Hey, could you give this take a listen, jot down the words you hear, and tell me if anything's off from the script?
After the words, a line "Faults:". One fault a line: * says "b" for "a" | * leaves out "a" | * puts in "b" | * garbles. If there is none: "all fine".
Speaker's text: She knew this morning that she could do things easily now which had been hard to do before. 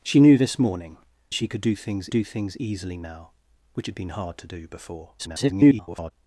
She knew this morning she could do things do things easily now which had been hard to do before. [garbled]
Faults:
* leaves out "that"
* puts in "do things"
* garbles